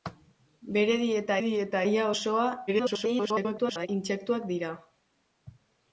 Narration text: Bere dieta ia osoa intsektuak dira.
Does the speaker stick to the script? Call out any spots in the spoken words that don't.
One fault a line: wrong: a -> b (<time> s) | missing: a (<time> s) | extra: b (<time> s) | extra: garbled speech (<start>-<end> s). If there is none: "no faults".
extra: dieta (1.4 s)
extra: garbled speech (2.7-3.9 s)